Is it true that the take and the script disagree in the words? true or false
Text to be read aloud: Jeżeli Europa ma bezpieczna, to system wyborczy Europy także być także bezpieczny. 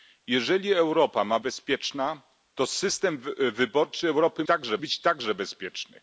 false